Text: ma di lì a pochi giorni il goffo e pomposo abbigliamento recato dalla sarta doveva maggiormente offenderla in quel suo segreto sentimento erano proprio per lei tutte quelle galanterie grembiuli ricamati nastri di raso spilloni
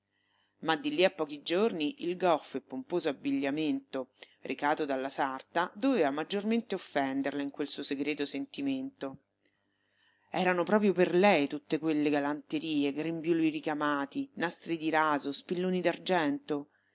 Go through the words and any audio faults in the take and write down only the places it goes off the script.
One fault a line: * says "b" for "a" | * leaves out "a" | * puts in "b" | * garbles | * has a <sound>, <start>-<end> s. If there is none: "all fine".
all fine